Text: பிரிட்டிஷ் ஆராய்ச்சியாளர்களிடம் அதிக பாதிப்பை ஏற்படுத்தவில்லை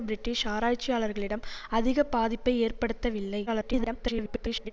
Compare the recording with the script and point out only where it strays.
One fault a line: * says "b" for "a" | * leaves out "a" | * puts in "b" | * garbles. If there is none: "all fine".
* garbles